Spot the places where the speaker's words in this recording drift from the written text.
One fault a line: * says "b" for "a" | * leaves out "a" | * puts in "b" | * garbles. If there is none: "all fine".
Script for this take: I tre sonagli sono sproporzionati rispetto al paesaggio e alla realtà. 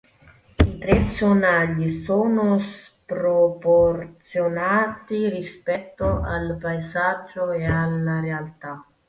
all fine